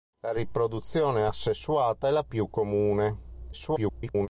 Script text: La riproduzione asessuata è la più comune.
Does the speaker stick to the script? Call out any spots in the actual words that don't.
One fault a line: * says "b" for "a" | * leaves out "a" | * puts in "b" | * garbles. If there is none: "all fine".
* garbles